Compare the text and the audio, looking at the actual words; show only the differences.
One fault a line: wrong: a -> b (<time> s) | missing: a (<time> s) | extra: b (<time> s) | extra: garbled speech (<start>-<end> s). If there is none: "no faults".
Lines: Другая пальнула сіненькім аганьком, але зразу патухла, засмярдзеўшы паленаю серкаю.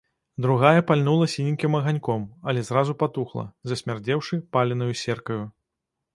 no faults